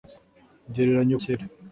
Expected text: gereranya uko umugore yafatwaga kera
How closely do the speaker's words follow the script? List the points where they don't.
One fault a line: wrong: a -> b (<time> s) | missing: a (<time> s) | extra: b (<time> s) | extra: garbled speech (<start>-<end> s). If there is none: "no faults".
missing: uko umugore yafatwaga (1.1 s)